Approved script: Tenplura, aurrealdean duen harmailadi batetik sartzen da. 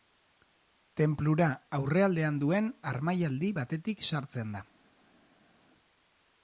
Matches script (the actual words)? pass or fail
pass